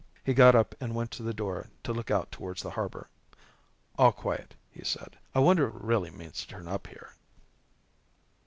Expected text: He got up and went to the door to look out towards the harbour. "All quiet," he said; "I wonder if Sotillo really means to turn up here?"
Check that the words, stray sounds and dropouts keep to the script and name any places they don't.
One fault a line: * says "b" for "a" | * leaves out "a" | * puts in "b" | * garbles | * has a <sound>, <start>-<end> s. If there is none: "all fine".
* leaves out "if Sotillo"